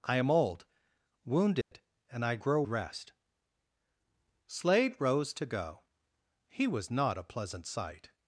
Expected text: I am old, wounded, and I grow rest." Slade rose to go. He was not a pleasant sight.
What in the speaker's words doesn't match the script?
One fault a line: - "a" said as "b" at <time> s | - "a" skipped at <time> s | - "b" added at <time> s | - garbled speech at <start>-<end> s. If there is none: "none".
none